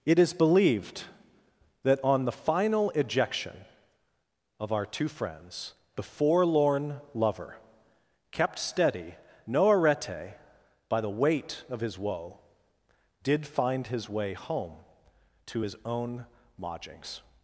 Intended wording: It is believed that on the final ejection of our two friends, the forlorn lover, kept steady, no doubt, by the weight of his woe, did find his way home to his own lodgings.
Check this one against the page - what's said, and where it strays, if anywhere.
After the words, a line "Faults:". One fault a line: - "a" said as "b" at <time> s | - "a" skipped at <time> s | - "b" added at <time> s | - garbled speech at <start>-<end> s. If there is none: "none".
It is believed that on the final ejection of our two friends, the forlorn lover, kept steady, no arete, by the weight of his woe, did find his way home to his own lodgings.
Faults:
- "doubt" said as "arete" at 9.7 s